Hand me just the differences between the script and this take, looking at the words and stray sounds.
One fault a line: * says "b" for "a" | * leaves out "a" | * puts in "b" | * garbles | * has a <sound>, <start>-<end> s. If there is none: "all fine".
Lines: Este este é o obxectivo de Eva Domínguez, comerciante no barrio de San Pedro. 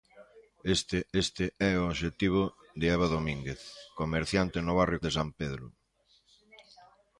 all fine